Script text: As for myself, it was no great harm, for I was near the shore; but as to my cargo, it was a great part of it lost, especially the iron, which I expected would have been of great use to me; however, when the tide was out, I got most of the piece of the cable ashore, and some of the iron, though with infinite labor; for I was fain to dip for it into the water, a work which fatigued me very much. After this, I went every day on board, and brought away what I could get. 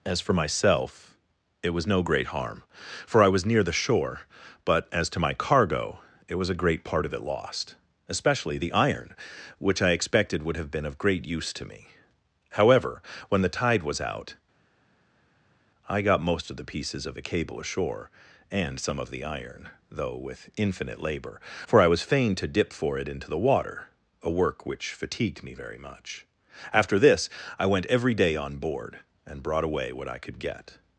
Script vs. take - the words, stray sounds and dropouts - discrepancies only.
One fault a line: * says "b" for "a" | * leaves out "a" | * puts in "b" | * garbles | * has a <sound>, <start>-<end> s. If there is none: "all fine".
* says "pieces" for "piece"